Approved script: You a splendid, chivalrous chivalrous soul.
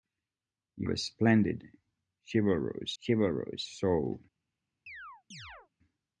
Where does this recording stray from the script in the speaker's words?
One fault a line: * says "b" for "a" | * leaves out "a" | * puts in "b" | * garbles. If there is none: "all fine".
all fine